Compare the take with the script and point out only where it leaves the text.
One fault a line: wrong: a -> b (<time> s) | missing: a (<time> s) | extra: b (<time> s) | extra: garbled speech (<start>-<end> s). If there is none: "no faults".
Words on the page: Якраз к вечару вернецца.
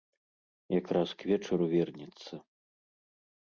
no faults